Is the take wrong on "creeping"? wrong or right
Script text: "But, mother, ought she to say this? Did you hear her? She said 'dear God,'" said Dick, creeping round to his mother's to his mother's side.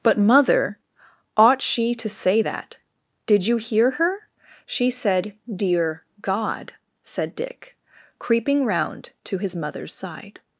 right